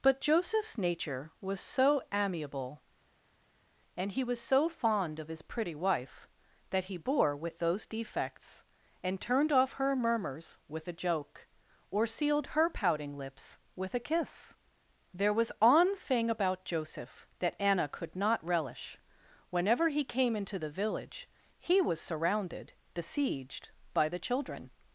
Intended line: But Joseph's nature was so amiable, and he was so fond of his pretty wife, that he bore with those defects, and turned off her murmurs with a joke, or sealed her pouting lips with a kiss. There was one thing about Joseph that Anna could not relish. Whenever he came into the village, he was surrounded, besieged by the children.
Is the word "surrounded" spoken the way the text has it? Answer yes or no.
yes